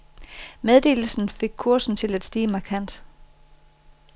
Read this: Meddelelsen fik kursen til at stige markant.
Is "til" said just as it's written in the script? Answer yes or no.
yes